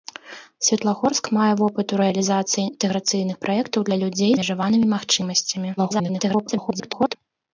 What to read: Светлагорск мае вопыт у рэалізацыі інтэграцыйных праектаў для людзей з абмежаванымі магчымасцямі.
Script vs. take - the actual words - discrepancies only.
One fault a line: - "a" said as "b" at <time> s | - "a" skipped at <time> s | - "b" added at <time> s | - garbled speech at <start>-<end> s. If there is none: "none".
- "з" skipped at 4.3 s
- garbled speech at 5.8-7.2 s